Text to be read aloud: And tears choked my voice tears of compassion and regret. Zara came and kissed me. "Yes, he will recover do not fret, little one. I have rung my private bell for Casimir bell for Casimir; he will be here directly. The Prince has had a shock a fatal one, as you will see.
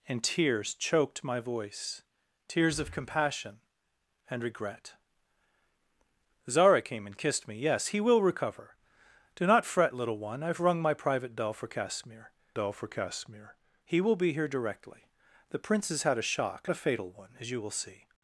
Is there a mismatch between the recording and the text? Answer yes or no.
no